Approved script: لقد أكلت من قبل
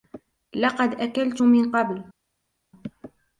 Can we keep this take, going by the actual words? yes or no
yes